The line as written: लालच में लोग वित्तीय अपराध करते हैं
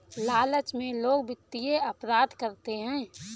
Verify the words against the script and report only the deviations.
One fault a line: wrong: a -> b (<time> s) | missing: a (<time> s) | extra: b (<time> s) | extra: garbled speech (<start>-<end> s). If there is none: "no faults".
no faults